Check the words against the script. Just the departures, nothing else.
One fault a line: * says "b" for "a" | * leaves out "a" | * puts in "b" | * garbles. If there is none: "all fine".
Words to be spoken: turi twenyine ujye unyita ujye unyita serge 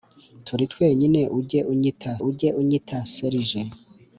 all fine